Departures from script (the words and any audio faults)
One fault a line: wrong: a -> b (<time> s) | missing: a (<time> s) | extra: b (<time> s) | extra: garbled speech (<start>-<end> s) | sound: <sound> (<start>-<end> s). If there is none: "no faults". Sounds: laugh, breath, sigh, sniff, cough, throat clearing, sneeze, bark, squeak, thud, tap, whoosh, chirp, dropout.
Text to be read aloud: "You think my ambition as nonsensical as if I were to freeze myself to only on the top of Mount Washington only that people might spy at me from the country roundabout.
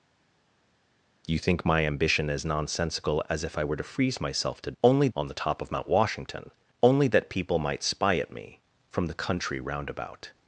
no faults